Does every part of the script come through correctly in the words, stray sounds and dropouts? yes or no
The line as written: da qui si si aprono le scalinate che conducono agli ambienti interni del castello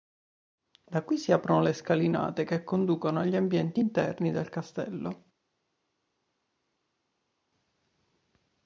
no